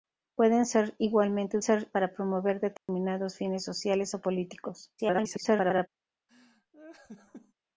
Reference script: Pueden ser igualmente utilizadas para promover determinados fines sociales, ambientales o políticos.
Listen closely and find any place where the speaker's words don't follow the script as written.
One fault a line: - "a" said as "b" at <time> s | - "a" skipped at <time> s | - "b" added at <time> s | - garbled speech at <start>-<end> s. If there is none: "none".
- "utilizadas" said as "ser" at 1.6 s
- "ambientales" skipped at 4.1 s
- garbled speech at 5.0-5.9 s